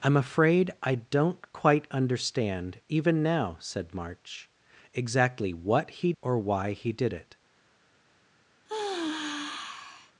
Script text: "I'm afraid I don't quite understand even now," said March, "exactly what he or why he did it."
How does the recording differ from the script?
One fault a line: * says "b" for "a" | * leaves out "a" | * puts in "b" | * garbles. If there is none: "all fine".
all fine